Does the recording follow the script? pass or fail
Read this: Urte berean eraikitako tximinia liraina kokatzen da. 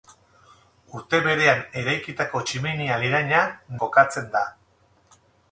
pass